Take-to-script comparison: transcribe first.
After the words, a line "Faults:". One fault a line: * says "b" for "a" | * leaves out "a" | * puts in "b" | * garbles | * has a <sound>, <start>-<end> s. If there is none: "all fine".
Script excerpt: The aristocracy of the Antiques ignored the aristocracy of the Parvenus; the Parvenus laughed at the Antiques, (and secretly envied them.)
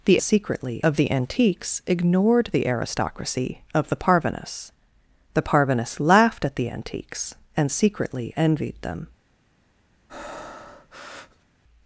The secretly of the Antiques ignored the aristocracy of the Parvenus; the Parvenus laughed at the Antiques, (and secretly envied them.)
Faults:
* says "secretly" for "aristocracy"
* has a breath, 10.1-11.5 s